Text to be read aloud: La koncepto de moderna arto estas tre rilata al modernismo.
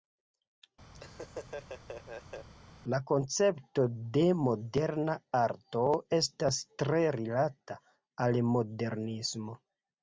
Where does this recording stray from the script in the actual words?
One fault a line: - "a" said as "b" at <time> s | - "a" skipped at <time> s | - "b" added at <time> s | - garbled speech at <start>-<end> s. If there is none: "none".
none